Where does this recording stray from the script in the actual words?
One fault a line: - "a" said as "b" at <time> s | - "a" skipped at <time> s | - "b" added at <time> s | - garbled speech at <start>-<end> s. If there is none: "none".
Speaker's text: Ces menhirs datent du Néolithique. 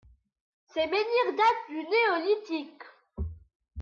none